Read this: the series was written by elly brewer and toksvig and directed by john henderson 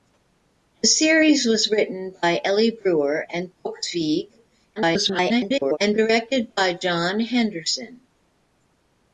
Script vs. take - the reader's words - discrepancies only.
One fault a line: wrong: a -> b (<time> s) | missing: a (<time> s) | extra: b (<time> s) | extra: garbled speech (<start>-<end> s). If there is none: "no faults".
extra: garbled speech (4.8-5.8 s)